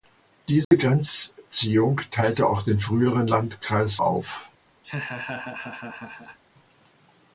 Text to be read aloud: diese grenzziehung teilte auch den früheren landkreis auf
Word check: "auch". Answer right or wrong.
right